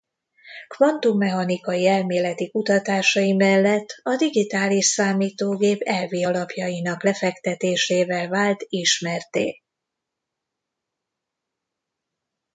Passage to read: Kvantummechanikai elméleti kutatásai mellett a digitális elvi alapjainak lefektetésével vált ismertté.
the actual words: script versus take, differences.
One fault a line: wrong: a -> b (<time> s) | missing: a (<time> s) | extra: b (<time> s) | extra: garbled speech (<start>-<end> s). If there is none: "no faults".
extra: számítógép (4.8 s)